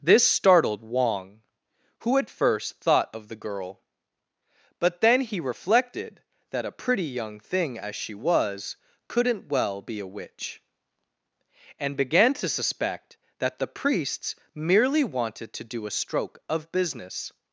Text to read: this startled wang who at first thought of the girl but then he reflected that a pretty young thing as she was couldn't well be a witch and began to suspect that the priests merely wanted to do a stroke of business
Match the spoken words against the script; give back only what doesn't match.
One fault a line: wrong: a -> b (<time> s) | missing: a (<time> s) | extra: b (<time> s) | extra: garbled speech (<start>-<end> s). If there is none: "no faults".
no faults